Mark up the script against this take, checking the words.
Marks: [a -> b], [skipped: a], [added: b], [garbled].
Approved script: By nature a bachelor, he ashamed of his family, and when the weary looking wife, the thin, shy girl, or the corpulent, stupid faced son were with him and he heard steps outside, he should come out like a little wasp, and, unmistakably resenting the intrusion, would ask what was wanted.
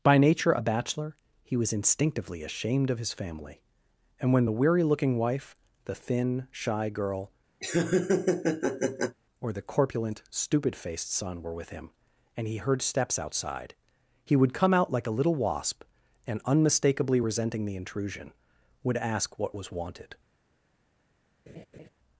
By nature a bachelor, he [added: was instinctively] ashamed of his family, and when the weary looking wife, the thin, shy girl, or the corpulent, stupid faced son were with him and he heard steps outside, he [should -> would] come out like a little wasp, and, unmistakably resenting the intrusion, would ask what was wanted.